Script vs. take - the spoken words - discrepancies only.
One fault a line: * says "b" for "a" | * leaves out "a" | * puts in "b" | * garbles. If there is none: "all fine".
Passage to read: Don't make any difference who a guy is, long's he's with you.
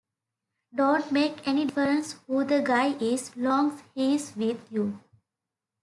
* says "the" for "a"